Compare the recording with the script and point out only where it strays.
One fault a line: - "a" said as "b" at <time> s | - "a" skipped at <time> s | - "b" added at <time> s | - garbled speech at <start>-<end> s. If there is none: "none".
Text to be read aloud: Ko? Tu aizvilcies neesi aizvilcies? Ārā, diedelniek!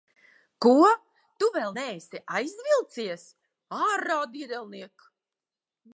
- "aizvilcies" said as "vēl" at 1.6 s